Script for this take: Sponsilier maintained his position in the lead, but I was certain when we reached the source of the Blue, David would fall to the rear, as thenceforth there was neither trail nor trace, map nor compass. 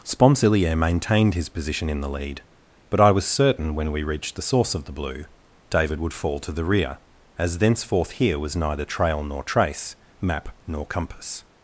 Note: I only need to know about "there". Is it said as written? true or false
false